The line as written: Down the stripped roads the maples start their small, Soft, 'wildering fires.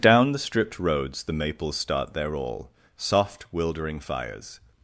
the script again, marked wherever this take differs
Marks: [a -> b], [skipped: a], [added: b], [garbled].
Down the stripped roads the maples start their [small, -> all] Soft, 'wildering fires.